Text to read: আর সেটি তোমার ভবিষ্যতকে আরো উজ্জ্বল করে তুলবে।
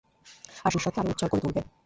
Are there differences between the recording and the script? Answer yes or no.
yes